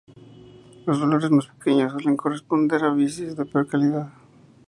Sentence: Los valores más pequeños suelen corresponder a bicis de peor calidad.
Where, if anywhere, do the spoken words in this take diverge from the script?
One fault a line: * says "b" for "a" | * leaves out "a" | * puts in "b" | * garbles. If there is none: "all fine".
all fine